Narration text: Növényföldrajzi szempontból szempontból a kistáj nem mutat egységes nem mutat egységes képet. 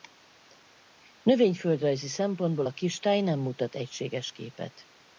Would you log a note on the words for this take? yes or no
yes